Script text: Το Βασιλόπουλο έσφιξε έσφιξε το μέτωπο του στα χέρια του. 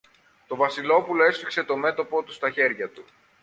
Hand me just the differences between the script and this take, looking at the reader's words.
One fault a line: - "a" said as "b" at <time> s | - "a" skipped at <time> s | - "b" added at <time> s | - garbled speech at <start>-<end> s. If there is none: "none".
- "έσφιξε" skipped at 1.6 s